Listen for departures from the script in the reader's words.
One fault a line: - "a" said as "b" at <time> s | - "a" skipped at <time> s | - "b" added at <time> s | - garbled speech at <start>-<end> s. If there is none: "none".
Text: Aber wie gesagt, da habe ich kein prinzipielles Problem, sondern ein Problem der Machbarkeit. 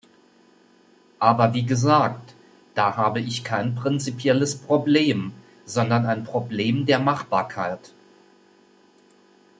none